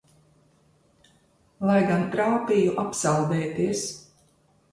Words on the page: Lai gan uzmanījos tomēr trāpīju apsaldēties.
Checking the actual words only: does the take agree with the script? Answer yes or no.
no